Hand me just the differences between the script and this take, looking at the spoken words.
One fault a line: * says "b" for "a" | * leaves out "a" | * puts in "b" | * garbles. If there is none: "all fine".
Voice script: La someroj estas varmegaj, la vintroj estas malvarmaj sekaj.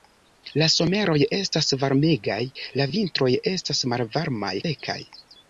all fine